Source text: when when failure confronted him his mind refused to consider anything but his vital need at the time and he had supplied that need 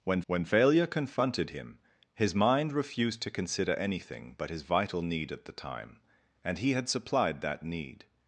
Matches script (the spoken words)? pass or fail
pass